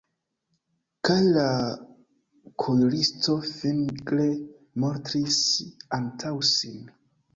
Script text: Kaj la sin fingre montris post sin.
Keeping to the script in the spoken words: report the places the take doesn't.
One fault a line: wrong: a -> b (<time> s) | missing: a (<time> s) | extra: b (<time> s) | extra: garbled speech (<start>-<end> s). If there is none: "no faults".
wrong: sin -> kuiristo (2.6 s)
wrong: post -> antaŭ (6.0 s)